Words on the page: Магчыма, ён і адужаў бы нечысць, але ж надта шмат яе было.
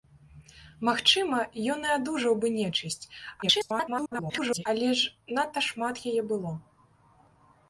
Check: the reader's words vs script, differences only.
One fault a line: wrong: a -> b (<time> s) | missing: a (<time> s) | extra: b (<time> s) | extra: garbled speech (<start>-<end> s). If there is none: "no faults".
extra: garbled speech (3.4-4.7 s)